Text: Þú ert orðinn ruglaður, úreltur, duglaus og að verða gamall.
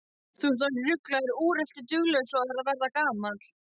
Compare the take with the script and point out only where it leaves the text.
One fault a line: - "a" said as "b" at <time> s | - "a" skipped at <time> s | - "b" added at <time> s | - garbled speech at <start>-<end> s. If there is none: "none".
none